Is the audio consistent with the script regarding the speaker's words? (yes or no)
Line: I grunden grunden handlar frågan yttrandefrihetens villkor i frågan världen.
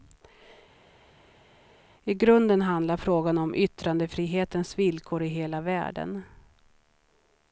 no